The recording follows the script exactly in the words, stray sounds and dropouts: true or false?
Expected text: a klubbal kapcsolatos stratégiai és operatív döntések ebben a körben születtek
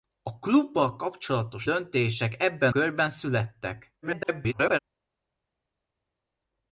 false